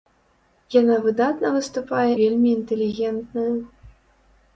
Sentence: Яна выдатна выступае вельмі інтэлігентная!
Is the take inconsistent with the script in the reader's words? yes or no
no